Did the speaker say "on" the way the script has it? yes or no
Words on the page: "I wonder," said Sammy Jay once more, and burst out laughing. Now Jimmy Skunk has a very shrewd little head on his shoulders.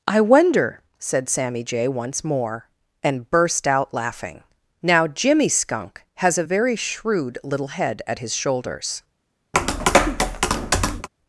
no